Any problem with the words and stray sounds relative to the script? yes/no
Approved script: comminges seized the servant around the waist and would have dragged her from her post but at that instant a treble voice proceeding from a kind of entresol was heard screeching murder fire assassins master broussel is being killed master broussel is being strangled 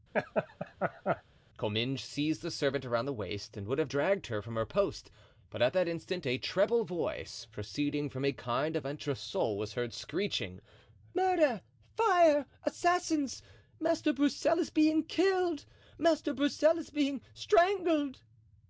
yes